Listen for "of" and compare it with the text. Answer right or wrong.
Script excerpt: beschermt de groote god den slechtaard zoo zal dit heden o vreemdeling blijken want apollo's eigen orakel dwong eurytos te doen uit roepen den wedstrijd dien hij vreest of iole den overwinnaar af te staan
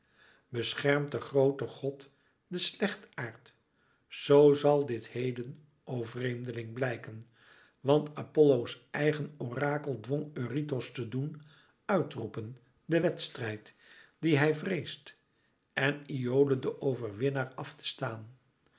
wrong